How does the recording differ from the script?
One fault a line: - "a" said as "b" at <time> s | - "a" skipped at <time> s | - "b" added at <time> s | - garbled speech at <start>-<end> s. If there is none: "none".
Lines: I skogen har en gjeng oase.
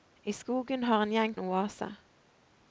none